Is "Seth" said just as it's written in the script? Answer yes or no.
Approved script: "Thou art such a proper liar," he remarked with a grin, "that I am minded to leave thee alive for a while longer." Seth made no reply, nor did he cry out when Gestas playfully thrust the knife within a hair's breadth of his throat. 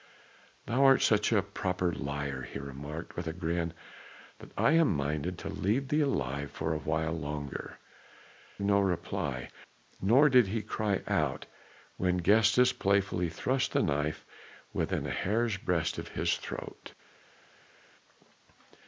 no